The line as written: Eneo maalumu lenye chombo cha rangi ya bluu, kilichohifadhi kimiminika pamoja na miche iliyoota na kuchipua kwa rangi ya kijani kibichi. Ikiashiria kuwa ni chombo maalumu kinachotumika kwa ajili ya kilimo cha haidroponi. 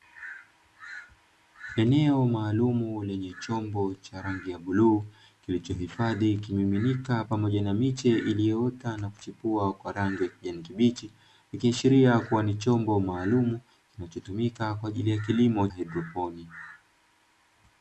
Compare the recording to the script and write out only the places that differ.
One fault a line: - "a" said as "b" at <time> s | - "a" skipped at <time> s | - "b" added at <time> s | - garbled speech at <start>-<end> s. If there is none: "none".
- "cha" skipped at 15.7 s